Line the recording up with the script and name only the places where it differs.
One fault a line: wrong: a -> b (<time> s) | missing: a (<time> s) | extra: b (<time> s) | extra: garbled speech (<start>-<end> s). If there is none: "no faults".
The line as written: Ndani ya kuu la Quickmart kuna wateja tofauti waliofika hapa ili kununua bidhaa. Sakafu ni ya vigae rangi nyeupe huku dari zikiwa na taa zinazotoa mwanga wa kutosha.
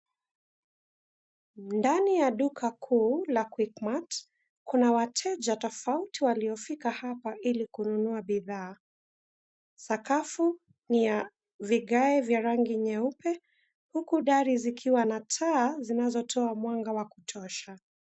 extra: duka (2.3 s)
extra: vya (12.2 s)